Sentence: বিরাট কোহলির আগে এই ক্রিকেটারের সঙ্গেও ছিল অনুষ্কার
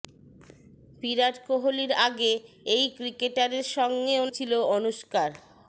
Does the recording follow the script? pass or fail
pass